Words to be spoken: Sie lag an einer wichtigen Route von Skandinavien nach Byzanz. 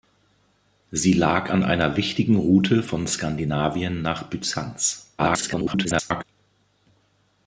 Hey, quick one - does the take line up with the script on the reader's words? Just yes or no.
no